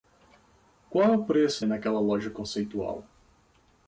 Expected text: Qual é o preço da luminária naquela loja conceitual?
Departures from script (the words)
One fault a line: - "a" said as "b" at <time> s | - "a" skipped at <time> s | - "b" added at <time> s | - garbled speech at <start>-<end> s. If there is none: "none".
- "da luminária" skipped at 1.6 s